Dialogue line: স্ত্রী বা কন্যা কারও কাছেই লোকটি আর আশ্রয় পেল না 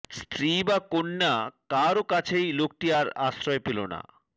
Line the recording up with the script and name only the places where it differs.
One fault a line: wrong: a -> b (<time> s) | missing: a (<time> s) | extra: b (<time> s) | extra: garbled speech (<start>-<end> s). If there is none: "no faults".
no faults